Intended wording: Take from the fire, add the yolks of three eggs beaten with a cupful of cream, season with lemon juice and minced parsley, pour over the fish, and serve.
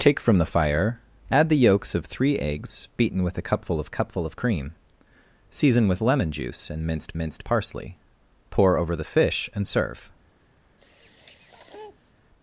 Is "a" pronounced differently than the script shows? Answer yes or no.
no